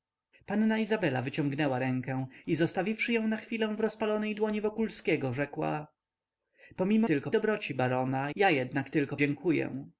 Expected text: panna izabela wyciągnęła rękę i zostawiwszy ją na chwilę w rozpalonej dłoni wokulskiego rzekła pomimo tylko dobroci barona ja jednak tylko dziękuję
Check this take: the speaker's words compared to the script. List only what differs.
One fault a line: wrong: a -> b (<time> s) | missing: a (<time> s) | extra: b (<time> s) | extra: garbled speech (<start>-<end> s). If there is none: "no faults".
no faults